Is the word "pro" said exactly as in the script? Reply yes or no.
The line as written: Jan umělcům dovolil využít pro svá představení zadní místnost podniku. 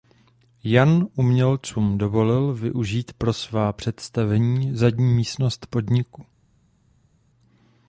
yes